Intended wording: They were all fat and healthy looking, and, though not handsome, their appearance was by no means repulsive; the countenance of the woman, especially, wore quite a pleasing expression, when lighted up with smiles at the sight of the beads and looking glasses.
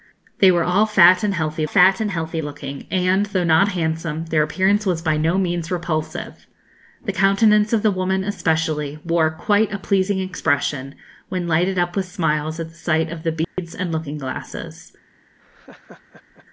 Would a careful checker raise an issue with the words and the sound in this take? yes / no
yes